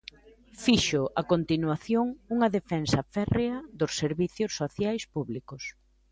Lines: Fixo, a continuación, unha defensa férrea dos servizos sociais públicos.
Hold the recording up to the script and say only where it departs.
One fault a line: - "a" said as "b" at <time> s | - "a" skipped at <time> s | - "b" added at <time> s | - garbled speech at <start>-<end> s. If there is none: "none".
none